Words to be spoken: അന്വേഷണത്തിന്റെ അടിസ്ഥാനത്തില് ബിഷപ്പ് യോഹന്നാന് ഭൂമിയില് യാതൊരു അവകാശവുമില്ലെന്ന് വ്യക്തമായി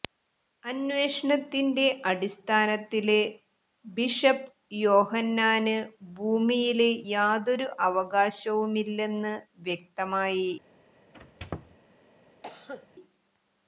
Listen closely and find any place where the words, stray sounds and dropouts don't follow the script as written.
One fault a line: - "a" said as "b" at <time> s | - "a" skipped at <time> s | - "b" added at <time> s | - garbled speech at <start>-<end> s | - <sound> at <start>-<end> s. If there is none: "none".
- squeak at 11.1-11.8 s
- cough at 12.4-12.9 s